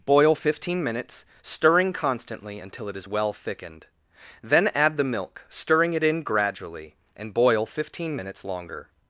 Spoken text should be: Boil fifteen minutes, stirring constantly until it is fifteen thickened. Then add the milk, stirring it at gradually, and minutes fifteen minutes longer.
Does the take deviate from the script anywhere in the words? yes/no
yes